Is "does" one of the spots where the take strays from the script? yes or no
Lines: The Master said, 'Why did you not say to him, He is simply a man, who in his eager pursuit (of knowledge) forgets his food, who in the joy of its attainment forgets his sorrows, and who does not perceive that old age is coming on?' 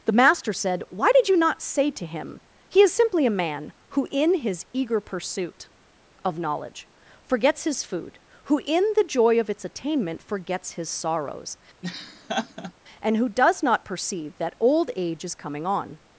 no